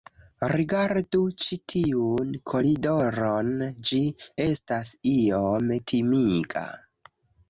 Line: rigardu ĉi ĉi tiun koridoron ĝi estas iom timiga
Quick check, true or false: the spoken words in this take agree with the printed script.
false